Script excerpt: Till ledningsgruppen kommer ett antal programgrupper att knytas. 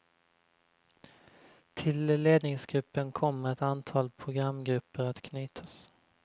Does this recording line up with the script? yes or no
yes